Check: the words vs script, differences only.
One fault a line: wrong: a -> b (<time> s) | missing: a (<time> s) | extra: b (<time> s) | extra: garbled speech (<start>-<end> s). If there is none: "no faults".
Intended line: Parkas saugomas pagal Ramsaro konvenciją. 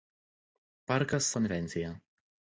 missing: saugomas pagal Ramsaro (1.3 s)